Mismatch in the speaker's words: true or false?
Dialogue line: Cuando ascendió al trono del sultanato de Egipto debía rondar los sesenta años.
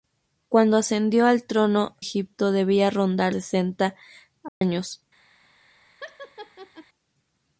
true